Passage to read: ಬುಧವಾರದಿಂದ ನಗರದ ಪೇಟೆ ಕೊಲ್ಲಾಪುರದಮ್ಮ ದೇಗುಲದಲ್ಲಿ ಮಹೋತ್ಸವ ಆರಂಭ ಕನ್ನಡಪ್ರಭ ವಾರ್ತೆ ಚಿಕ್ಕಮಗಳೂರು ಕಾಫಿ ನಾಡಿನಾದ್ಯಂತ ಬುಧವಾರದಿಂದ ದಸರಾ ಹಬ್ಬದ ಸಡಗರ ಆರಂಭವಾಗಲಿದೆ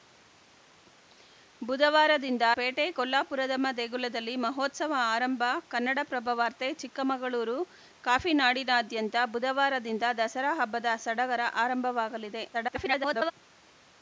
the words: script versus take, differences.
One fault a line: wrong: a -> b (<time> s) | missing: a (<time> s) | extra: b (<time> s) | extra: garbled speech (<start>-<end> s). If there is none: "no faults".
missing: ನಗರದ (2.5 s)
extra: garbled speech (12.5-13.3 s)